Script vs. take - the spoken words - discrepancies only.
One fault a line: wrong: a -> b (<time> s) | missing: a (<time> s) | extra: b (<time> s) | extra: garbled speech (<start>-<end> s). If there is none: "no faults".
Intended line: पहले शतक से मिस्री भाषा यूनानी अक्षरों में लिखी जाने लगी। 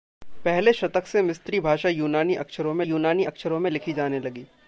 extra: यूनानी अक्षरों में (2.8 s)